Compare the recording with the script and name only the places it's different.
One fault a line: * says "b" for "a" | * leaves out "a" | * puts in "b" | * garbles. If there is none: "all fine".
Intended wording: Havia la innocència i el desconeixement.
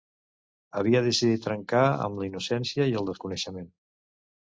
* puts in "decidit trencar amb"